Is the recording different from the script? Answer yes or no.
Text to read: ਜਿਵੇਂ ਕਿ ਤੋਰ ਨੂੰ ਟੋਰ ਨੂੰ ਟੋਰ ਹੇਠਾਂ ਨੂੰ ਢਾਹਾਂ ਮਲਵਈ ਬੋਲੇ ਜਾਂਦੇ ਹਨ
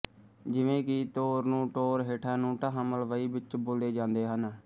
yes